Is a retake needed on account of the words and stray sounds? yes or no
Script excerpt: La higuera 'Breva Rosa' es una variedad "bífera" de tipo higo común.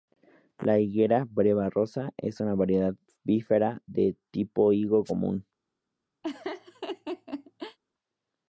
yes